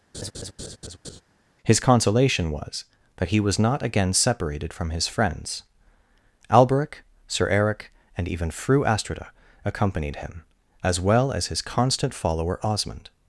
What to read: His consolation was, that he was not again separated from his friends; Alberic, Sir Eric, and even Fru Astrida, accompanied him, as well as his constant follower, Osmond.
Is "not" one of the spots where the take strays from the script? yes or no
no